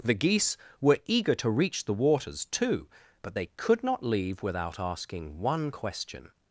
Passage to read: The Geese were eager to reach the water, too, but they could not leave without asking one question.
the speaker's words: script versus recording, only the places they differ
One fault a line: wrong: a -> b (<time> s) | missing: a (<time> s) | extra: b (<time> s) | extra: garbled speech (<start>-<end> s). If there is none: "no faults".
wrong: water -> waters (1.9 s)